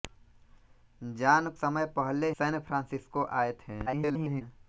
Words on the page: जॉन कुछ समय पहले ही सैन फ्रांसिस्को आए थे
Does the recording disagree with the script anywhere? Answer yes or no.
yes